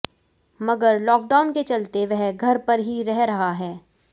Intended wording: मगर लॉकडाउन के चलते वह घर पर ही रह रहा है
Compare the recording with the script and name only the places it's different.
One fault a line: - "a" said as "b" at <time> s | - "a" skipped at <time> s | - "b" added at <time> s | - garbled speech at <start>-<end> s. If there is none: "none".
none